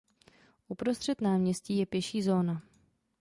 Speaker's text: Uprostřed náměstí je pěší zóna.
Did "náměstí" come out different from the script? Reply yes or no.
no